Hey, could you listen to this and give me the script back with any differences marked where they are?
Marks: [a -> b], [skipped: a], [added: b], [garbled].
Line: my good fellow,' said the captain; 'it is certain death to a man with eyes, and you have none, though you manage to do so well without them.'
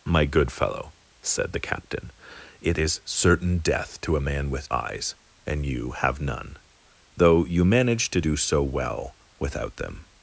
my good fellow,' said the captain; 'it is certain death to a man with eyes, and you have none, though you manage to do so well without them.'